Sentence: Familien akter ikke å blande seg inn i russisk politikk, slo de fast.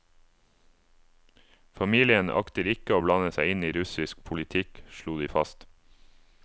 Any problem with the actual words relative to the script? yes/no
no